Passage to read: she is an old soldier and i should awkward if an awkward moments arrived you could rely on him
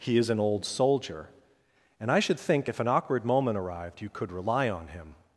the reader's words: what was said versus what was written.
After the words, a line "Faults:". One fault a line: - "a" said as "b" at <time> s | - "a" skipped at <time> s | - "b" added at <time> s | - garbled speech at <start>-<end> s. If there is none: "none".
he is an old soldier and i should think if an awkward moment arrived you could rely on him
Faults:
- "she" said as "he" at 0.0 s
- "awkward" said as "think" at 2.4 s
- "moments" said as "moment" at 3.3 s